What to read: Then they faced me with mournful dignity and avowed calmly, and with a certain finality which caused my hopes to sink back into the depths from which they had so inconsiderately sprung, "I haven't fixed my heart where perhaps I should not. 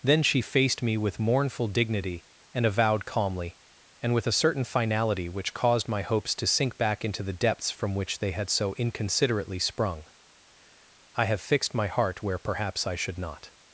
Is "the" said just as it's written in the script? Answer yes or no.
yes